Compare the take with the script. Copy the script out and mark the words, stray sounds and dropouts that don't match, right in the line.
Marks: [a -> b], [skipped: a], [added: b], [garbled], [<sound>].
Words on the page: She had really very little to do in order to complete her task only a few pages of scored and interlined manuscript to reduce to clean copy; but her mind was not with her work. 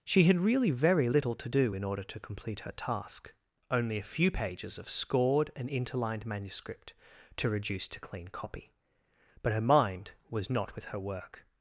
She had really very little to do in order to complete her task only a few pages of scored and interlined manuscript to reduce to clean copy; but her mind was not with her work.